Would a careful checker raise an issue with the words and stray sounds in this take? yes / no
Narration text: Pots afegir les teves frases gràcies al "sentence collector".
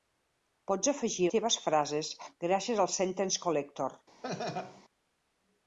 yes